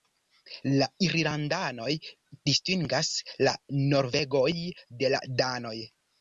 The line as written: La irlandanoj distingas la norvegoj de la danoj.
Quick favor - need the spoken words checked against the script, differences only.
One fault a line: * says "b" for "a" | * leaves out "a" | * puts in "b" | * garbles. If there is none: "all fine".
all fine